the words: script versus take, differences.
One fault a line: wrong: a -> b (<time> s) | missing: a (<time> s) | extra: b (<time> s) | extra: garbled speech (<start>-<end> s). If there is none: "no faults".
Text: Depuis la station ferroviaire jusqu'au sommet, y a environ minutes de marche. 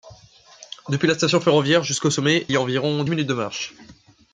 no faults